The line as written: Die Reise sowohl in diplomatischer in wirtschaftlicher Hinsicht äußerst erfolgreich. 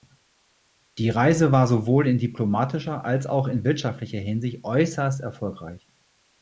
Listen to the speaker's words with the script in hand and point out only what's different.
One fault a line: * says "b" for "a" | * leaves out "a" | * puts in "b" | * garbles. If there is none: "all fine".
* puts in "war"
* puts in "als auch"